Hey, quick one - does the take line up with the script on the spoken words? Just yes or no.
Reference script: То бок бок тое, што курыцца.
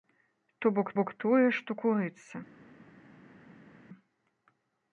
yes